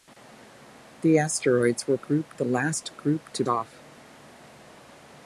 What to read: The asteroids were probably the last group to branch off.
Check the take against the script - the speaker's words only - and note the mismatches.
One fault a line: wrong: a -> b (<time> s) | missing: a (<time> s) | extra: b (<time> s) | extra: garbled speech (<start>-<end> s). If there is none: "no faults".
wrong: probably -> group (2.0 s)
missing: branch (3.4 s)